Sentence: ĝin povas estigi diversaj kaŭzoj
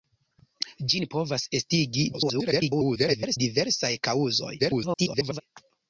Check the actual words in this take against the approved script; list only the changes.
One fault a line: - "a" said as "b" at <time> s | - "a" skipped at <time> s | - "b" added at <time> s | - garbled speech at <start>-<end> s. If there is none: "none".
- garbled speech at 2.1-3.4 s
- garbled speech at 4.6-5.4 s